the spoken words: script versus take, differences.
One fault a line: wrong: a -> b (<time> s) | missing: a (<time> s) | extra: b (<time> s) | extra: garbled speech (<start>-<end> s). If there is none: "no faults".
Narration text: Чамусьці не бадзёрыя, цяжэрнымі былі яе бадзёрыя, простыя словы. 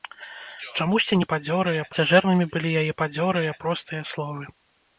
no faults